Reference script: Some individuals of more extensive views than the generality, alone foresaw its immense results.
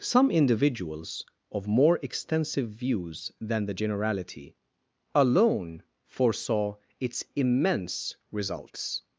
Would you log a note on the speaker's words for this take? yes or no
no